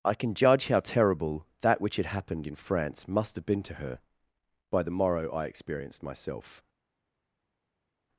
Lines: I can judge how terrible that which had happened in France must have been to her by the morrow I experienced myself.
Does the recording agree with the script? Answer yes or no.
yes